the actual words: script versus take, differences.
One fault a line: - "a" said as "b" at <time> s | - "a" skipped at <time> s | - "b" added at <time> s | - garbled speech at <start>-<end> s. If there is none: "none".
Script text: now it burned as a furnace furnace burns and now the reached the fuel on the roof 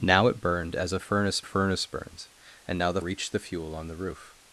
none